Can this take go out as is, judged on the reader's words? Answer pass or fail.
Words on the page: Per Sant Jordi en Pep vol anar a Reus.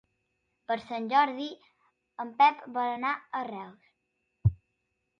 pass